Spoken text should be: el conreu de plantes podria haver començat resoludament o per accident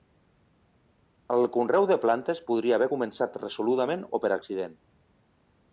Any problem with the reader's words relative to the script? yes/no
no